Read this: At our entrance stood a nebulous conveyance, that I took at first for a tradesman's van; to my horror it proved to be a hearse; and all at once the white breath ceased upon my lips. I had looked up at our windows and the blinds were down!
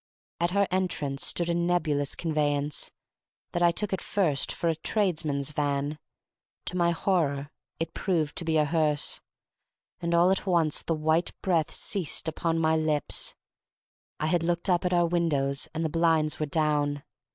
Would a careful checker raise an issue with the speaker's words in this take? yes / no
no